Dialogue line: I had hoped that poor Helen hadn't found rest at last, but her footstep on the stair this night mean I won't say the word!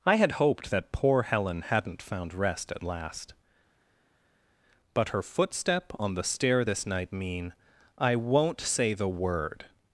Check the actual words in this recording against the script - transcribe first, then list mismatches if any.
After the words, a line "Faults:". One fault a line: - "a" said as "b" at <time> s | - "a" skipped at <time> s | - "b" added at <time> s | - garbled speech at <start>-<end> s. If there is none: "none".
I had hoped that poor Helen hadn't found rest at last, but her footstep on the stair this night mean I won't say the word!
Faults:
none